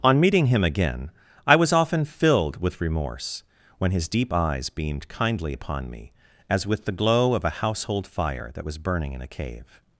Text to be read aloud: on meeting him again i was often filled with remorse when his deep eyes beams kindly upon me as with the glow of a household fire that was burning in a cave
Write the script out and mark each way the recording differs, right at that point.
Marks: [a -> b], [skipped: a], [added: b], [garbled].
on meeting him again i was often filled with remorse when his deep eyes [beams -> beamed] kindly upon me as with the glow of a household fire that was burning in a cave